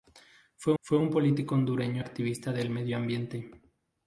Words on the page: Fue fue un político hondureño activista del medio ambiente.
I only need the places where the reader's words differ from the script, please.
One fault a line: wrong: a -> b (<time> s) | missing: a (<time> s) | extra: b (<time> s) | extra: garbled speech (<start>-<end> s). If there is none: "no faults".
no faults